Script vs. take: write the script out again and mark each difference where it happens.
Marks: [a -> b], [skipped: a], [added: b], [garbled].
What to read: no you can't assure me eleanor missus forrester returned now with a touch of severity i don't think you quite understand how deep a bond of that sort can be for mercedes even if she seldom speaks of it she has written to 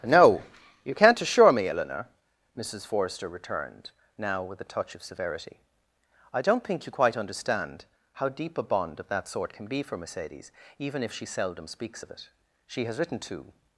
no you can't assure me eleanor missus forrester returned now with a touch of severity i don't think you quite understand how deep a bond of that sort can be for mercedes even if she seldom speaks of it she has written to